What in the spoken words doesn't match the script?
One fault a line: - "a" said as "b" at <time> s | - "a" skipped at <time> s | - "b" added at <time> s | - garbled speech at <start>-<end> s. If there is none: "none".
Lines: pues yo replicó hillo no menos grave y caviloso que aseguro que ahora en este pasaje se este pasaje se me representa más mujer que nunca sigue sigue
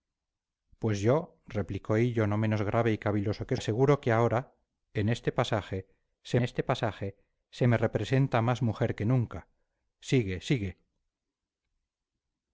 none